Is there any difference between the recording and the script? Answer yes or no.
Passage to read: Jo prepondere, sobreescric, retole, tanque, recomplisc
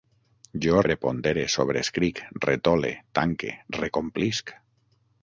no